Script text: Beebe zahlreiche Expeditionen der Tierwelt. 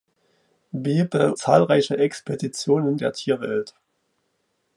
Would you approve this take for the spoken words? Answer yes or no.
yes